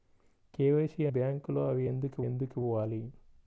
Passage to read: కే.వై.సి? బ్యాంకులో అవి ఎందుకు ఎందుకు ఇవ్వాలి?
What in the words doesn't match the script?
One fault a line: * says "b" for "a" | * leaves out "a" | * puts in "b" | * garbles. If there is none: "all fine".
all fine